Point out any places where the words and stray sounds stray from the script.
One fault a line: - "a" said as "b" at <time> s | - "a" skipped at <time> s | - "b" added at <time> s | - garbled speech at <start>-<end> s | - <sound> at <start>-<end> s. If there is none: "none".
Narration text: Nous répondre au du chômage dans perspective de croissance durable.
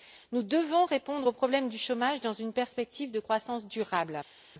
- "devons" added at 0.4 s
- "problème" added at 1.3 s
- "une" added at 2.3 s